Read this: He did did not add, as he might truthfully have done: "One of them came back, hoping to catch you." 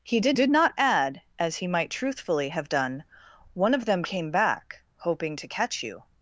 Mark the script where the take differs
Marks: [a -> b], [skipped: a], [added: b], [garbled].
He did did not add, as he might truthfully have done: "One of them came back, hoping to catch you."